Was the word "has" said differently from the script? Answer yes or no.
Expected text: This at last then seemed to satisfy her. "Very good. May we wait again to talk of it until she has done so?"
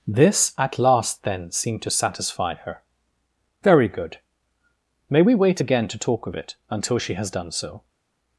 no